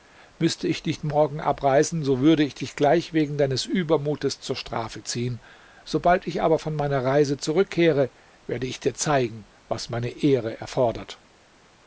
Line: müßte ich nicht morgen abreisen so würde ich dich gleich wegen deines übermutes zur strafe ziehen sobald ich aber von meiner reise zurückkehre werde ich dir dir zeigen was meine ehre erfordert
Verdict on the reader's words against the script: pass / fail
fail